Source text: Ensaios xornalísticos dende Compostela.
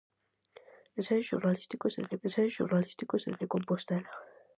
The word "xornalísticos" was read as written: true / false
true